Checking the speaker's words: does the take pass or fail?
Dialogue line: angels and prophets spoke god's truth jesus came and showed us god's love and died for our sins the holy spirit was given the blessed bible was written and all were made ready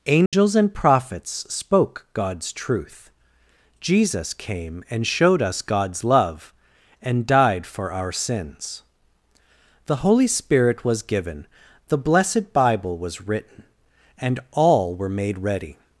pass